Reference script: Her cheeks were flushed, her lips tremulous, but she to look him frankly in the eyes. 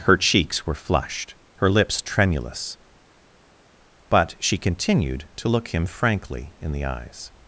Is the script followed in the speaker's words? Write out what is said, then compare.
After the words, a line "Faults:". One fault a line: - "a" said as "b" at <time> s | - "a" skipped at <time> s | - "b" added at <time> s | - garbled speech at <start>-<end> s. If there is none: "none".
Her cheeks were flushed, her lips tremulous, but she continued to look him frankly in the eyes.
Faults:
- "continued" added at 4.6 s